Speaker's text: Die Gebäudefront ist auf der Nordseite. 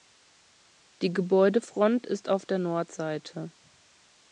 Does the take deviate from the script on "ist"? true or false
false